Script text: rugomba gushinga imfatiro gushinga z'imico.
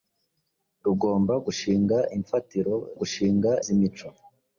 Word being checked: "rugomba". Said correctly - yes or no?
yes